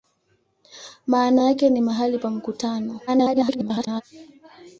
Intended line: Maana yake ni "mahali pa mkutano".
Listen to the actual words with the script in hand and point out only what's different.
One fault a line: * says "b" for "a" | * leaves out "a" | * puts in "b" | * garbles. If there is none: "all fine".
* garbles